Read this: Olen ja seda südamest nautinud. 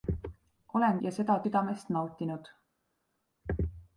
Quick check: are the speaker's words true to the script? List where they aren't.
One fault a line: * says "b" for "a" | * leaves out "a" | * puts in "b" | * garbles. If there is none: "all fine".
all fine